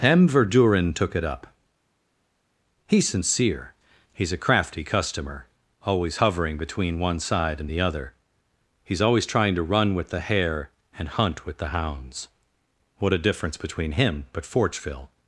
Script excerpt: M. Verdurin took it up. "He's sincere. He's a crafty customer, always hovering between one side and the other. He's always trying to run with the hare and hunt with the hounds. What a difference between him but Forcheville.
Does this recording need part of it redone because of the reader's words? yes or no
no